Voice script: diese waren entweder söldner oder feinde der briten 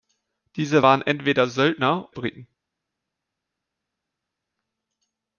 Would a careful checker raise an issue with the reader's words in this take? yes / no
yes